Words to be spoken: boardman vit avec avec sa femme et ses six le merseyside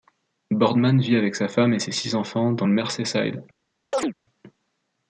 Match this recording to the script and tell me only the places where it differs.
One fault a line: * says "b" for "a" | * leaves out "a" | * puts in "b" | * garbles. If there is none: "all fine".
* leaves out "avec"
* puts in "enfants dans"